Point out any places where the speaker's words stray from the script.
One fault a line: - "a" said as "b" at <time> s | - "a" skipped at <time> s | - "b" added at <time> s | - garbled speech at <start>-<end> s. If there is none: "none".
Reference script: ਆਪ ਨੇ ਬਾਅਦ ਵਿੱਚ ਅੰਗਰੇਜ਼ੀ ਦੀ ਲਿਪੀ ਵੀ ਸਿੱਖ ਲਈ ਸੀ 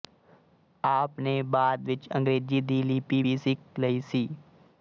none